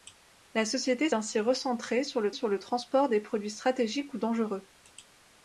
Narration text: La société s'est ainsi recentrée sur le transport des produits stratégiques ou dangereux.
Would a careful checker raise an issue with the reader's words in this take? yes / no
yes